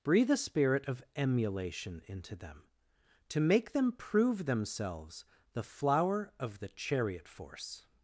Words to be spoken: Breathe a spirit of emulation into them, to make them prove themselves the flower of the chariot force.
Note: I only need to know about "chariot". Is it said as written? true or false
true